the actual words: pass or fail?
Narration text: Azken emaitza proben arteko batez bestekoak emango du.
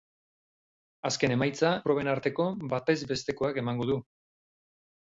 pass